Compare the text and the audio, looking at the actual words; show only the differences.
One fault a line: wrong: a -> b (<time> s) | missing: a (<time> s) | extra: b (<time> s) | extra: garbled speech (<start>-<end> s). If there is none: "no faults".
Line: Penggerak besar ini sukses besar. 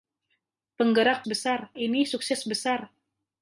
no faults